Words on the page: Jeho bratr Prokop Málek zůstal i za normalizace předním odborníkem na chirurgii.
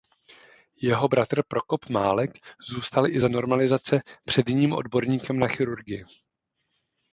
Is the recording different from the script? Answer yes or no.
no